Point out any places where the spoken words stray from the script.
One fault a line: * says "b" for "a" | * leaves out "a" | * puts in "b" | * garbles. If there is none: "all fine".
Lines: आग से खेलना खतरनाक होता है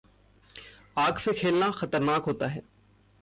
all fine